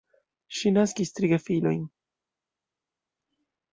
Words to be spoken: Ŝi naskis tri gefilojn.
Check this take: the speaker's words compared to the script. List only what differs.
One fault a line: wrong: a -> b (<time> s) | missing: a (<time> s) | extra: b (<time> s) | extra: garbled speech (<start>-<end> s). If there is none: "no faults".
no faults